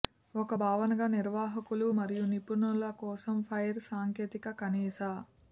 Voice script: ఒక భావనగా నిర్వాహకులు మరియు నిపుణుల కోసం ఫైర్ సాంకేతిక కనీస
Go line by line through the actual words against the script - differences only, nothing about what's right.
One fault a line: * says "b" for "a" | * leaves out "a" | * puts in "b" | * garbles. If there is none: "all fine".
all fine